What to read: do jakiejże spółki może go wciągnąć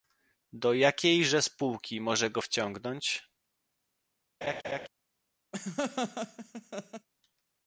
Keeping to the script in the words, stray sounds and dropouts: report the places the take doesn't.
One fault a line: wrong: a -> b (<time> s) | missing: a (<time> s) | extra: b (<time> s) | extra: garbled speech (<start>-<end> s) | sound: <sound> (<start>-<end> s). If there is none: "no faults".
sound: laugh (4.4-4.9 s)
sound: laugh (5.5-7.1 s)